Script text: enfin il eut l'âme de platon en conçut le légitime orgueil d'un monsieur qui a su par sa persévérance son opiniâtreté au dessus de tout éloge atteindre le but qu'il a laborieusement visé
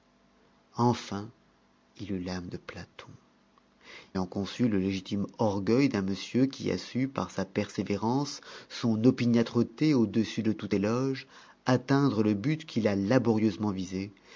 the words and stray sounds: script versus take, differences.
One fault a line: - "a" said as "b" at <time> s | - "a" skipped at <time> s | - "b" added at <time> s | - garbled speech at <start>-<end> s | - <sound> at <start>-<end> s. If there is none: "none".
none